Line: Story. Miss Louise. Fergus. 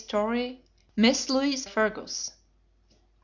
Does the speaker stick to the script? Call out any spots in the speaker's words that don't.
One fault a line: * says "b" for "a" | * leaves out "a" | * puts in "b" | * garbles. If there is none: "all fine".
all fine